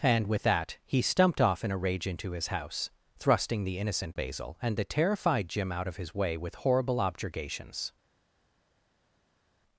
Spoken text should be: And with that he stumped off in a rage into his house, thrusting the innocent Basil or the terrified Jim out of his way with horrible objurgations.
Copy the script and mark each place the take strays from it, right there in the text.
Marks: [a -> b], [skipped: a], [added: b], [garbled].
And with that he stumped off in a rage into his house, thrusting the innocent Basil [or -> and] the terrified Jim out of his way with horrible objurgations.